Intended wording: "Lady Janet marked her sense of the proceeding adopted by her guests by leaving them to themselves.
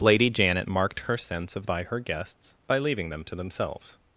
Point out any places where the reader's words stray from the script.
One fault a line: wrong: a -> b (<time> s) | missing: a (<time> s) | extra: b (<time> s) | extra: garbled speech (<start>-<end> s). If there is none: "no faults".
missing: the proceeding adopted (1.7 s)